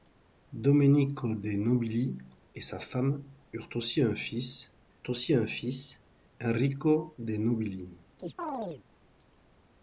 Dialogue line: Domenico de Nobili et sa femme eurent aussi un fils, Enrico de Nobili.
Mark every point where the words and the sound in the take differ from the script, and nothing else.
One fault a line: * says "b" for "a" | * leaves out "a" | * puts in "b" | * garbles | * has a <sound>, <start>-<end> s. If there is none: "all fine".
* puts in "aussi un fils"
* has a chirp, 8.2-8.8 s